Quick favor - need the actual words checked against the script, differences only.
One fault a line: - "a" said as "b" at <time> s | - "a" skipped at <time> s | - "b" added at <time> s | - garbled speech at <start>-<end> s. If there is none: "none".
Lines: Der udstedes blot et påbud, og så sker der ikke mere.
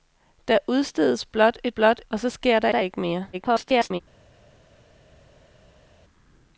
- "påbud" said as "blot" at 1.7 s
- "der" added at 2.7 s
- garbled speech at 3.3-4.0 s